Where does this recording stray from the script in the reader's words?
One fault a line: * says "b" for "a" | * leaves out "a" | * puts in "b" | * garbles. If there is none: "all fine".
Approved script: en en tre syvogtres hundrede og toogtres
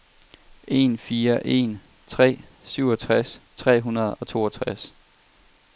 * puts in "fire"
* puts in "tre"